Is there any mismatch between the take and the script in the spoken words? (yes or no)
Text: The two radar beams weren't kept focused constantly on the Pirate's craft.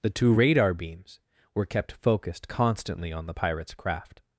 yes